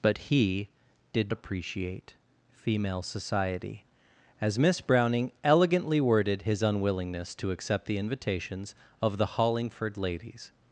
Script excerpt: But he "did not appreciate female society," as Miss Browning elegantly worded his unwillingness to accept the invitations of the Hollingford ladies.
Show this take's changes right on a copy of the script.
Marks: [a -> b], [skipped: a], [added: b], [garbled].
But he "did [skipped: not] appreciate female society," as Miss Browning elegantly worded his unwillingness to accept the invitations of the Hollingford ladies.